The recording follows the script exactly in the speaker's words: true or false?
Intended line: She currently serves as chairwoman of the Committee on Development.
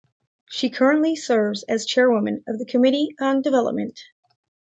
true